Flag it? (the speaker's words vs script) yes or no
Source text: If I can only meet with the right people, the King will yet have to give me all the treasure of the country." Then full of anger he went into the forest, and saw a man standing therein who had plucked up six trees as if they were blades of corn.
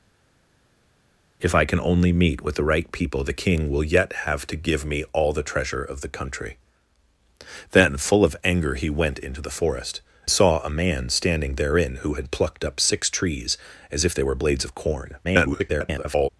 yes